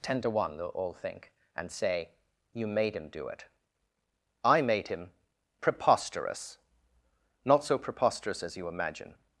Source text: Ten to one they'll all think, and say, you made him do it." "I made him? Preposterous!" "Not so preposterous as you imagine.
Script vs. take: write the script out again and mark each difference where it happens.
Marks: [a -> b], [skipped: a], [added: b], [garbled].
Ten to one they'll all think, and say, you made him do it." "I made him? Preposterous!" "Not so preposterous as you imagine.